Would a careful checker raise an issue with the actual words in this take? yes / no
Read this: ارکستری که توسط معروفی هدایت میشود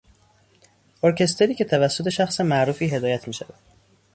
yes